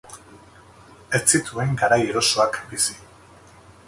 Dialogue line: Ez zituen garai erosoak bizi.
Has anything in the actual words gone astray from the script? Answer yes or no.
no